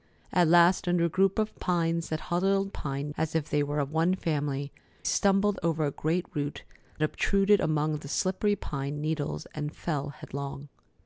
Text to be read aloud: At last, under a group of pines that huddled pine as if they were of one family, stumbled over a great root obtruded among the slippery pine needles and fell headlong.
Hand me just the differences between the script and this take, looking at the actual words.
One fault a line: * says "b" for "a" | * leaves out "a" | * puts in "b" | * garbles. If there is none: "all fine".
all fine